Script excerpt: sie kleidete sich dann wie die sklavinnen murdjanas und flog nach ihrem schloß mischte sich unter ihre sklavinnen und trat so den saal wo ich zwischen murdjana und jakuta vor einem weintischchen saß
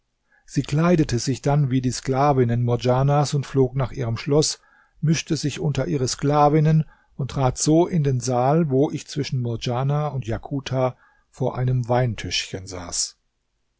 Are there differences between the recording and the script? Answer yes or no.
yes